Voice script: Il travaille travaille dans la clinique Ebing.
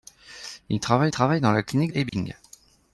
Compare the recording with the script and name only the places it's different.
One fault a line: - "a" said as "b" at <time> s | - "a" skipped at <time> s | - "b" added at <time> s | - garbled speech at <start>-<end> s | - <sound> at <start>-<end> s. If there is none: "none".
- dropout at 2.1-2.1 s